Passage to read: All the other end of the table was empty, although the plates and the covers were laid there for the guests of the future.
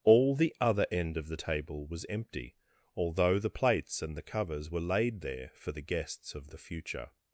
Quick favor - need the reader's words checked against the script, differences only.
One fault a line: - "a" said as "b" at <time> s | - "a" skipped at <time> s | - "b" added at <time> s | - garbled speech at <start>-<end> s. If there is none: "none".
none